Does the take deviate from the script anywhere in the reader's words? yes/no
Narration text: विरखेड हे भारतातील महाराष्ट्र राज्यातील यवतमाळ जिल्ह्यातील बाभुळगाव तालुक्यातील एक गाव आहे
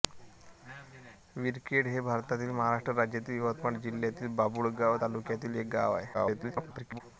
yes